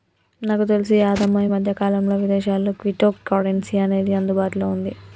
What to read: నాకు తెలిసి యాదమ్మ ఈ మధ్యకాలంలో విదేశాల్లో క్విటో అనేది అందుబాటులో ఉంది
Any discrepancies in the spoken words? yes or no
yes